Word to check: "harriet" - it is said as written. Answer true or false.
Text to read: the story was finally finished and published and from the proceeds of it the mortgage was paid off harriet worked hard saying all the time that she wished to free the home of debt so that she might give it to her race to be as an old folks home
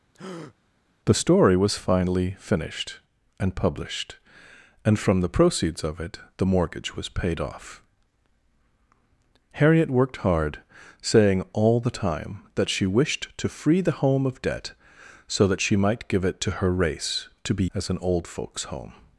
true